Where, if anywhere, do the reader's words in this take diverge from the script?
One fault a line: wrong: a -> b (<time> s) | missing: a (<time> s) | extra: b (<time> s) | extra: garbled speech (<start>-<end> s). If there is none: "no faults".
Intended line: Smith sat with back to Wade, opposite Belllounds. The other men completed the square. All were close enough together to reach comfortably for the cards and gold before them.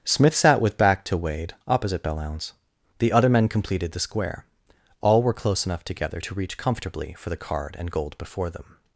wrong: cards -> card (7.4 s)